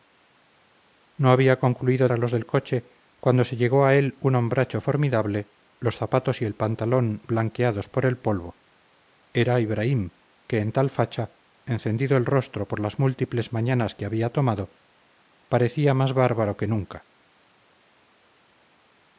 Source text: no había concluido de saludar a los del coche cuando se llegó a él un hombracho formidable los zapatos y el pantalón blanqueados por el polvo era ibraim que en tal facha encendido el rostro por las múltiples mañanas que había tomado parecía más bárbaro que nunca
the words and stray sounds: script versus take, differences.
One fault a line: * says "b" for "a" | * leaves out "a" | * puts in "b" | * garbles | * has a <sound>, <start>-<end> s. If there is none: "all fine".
* leaves out "de saludar"